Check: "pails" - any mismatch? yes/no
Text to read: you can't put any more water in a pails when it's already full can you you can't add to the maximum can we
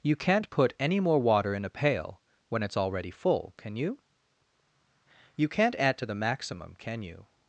yes